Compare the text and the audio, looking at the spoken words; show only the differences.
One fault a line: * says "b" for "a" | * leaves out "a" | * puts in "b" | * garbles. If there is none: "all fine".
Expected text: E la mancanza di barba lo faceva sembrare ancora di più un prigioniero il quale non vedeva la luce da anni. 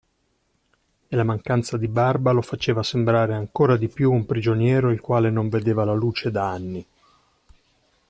all fine